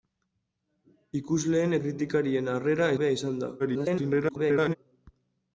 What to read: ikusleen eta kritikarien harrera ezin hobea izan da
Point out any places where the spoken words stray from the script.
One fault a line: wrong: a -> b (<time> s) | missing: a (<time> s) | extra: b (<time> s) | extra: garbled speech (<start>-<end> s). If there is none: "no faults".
missing: eta (1.8 s)
missing: ezin (2.9 s)
extra: garbled speech (3.6-4.8 s)